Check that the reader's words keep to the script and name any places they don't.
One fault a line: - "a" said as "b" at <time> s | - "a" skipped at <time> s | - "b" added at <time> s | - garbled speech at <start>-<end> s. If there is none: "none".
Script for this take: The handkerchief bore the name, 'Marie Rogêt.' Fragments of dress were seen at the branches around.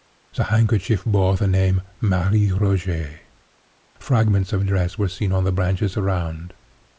- "at" said as "on" at 5.3 s